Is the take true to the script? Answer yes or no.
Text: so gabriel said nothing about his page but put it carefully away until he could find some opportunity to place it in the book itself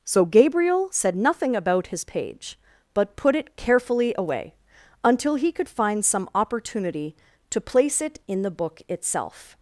yes